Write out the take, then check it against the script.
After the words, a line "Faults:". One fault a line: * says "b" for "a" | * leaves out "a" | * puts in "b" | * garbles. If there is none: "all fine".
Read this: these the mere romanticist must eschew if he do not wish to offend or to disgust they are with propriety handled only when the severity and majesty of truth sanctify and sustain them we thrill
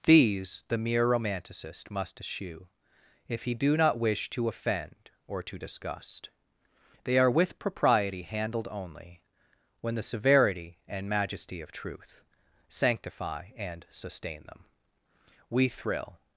these the mere romanticist must eschew if he do not wish to offend or to disgust they are with propriety handled only when the severity and majesty of truth sanctify and sustain them we thrill
Faults:
all fine